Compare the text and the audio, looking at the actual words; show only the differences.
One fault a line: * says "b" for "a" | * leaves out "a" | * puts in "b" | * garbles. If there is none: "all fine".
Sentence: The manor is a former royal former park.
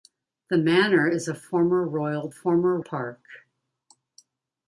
all fine